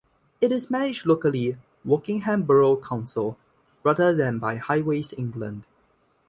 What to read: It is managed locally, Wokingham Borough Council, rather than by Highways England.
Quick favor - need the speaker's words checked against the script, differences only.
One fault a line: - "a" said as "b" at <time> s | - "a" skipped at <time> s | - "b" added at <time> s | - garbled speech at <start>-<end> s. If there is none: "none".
none